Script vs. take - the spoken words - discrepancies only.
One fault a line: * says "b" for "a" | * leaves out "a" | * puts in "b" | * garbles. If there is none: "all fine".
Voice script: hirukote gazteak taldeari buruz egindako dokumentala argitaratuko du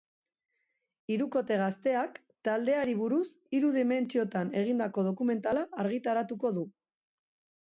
* puts in "hiru dimentsiotan"